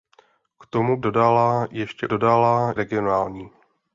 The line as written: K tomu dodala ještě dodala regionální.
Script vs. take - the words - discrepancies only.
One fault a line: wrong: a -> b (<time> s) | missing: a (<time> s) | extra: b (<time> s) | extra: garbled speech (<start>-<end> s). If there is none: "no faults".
no faults